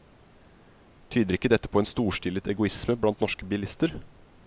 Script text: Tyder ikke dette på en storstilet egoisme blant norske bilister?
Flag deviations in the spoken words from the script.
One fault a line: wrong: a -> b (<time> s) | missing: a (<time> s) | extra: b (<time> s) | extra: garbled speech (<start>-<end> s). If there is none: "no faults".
no faults